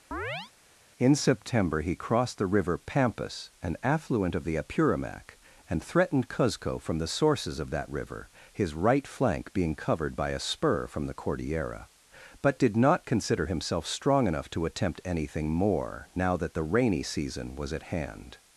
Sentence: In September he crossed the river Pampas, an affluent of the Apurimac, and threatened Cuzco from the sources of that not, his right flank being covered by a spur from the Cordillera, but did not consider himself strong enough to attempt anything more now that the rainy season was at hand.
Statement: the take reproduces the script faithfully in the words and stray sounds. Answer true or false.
false